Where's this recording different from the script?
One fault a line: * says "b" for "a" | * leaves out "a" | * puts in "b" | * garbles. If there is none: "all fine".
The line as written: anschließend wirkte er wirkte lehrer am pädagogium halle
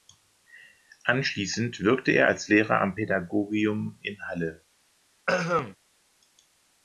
* says "als" for "wirkte"
* puts in "in"